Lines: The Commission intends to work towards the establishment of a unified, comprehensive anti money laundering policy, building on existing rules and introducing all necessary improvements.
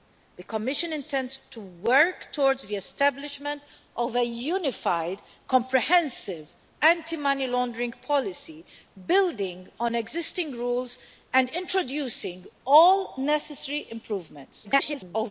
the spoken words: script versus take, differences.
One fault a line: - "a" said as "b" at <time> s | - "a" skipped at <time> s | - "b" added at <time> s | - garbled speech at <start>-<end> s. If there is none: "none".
- garbled speech at 14.6-15.3 s